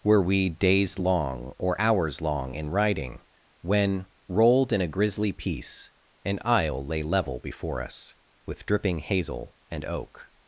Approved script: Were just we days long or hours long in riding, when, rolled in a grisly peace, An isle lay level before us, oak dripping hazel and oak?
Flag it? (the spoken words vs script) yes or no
yes